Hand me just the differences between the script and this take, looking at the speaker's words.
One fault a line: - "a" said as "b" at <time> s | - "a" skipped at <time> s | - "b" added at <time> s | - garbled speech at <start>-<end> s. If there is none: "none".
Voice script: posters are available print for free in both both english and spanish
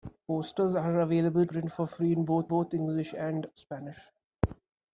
none